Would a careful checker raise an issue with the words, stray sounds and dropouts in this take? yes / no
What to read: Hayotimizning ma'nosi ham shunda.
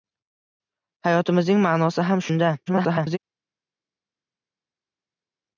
yes